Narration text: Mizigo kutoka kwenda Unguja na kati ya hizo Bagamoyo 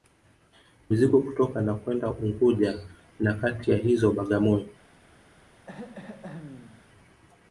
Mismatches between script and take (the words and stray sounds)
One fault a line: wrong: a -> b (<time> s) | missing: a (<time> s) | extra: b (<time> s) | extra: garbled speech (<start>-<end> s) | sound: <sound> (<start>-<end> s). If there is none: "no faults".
extra: na (1.6 s)
sound: throat clearing (5.7-6.8 s)